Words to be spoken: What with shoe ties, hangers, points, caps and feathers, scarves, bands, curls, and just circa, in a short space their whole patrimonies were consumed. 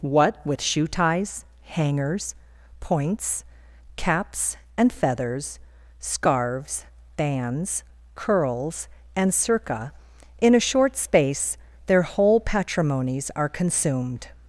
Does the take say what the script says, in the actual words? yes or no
no